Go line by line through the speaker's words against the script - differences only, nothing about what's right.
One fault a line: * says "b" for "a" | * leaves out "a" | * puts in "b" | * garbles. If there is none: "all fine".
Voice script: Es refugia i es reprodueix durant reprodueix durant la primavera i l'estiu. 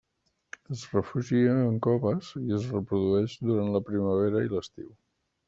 * puts in "en coves"
* leaves out "reprodueix durant"